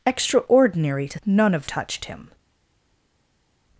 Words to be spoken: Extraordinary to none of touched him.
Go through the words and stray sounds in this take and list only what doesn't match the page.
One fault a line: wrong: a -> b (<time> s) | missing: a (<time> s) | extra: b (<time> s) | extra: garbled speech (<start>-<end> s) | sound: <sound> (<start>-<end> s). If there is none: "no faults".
no faults